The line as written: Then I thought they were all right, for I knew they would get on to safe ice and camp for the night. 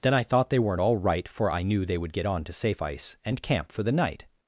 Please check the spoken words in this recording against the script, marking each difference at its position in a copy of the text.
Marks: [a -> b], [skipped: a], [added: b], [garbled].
Then I thought they [were -> weren't] all right, for I knew they would get on to safe ice and camp for the night.